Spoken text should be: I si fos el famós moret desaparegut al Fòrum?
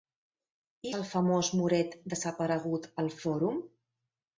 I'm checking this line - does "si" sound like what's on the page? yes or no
no